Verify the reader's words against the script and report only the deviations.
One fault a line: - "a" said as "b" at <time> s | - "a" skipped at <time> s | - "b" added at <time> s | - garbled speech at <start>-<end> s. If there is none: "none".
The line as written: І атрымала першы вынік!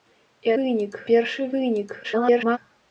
- "атрымала" said as "вынік" at 0.6 s
- garbled speech at 2.0-2.6 s